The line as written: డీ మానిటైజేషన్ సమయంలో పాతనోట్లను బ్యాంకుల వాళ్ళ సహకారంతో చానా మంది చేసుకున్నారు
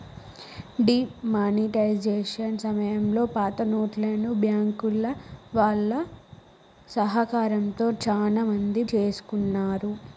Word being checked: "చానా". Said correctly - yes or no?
yes